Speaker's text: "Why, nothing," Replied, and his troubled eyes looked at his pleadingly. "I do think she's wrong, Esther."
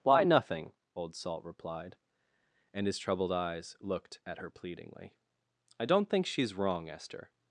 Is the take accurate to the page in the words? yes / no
no